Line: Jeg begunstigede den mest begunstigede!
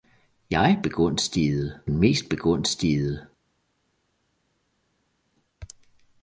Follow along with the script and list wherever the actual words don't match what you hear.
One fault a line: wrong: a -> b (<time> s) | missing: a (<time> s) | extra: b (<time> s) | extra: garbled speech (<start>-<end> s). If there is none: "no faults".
no faults